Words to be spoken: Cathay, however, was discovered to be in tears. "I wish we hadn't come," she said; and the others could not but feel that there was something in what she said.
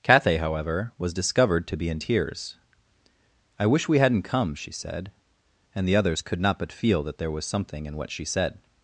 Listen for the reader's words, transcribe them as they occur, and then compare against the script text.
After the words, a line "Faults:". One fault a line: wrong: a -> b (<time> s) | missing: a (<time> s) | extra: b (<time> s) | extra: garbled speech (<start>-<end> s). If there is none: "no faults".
Cathay, however, was discovered to be in tears. "I wish we hadn't come," she said; and the others could not but feel that there was something in what she said.
Faults:
no faults